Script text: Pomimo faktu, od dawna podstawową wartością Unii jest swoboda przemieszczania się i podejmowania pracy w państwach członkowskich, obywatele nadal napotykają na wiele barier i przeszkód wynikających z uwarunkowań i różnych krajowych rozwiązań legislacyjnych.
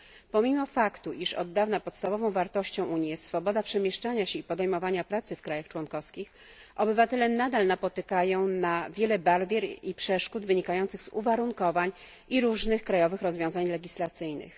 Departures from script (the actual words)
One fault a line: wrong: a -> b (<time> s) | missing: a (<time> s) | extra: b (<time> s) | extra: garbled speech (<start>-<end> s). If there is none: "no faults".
extra: iż (1.1 s)